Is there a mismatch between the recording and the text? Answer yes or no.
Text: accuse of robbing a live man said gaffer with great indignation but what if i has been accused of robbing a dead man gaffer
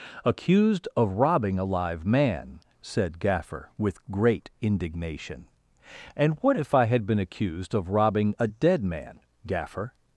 yes